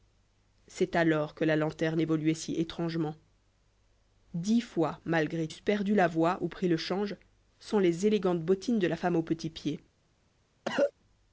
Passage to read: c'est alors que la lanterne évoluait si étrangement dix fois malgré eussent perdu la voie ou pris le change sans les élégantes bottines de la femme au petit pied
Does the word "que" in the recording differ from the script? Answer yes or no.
no